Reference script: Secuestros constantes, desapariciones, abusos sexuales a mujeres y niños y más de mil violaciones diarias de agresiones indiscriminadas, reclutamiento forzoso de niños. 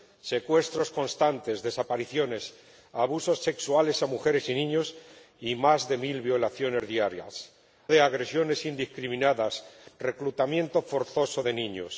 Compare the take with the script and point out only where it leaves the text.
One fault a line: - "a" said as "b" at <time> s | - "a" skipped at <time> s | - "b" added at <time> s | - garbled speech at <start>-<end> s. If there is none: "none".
none